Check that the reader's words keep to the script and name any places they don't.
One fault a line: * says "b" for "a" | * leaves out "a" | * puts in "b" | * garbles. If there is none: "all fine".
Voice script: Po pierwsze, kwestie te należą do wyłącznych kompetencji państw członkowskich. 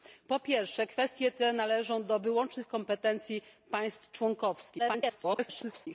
* garbles